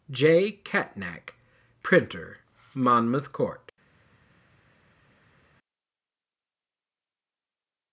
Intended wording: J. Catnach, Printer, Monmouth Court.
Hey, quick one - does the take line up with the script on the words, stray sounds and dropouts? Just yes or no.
yes